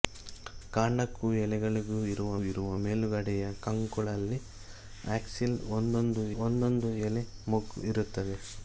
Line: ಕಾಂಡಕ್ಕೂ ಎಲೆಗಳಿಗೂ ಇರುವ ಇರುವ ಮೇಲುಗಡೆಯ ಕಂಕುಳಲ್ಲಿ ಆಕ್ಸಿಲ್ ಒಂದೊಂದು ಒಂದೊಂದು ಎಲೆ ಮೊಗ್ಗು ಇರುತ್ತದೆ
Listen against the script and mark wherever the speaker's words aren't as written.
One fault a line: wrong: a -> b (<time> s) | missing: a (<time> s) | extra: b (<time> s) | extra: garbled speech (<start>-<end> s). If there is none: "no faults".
no faults